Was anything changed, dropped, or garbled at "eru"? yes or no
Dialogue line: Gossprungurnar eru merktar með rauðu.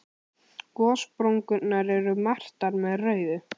no